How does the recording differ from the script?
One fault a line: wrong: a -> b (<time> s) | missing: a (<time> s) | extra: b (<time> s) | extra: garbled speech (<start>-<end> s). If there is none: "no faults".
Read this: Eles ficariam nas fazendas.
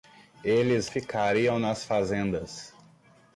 no faults